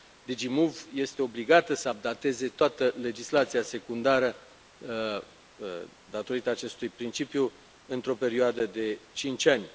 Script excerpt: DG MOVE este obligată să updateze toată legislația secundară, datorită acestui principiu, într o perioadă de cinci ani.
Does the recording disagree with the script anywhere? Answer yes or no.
no